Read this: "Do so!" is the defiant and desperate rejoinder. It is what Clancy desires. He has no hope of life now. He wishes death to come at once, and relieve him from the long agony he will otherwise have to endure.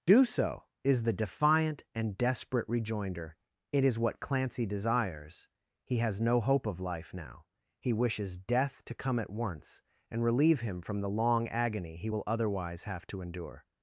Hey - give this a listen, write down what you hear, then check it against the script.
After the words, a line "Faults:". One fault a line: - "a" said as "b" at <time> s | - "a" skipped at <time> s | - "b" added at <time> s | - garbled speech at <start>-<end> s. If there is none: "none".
"Do so!" is the defiant and desperate rejoinder. It is what Clancy desires. He has no hope of life now. He wishes death to come at once, and relieve him from the long agony he will otherwise have to endure.
Faults:
none